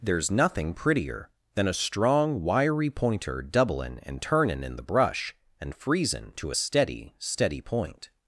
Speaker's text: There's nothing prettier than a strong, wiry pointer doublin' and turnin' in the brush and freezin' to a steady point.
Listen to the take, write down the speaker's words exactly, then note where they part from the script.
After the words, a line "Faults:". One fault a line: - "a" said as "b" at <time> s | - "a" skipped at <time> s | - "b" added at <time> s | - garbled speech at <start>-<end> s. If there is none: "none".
There's nothing prettier than a strong, wiry pointer doublin' and turnin' in the brush and freezin' to a steady steady point.
Faults:
- "steady" added at 7.2 s